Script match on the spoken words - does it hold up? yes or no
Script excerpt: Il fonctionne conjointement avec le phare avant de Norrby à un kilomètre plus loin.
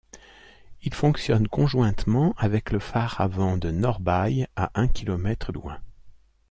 no